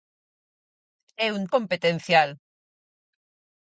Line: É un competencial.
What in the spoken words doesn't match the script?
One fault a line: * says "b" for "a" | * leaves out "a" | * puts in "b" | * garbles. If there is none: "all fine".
all fine